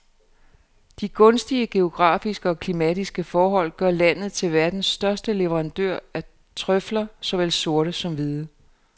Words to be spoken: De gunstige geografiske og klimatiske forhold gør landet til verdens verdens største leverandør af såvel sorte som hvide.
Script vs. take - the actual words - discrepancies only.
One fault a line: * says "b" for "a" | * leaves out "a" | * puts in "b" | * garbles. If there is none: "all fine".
* leaves out "verdens"
* puts in "trøfler"